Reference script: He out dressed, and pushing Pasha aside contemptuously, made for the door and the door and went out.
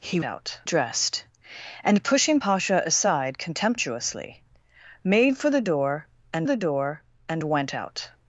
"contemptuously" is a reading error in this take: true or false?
false